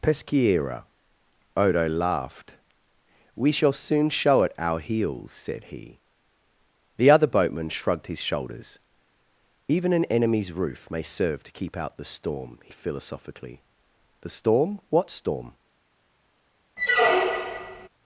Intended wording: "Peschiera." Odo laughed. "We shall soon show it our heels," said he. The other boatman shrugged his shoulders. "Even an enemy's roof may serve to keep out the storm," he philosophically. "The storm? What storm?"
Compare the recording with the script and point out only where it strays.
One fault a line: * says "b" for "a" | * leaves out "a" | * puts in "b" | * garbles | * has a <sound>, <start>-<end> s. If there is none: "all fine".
* has a squeak, 16.8-17.9 s